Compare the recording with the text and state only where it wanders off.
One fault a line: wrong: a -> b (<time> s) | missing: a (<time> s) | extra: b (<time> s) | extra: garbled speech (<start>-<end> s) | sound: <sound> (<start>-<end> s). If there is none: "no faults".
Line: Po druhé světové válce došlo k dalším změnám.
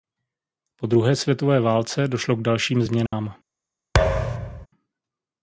sound: dropout (3.1-3.1 s)
sound: thud (3.9-4.7 s)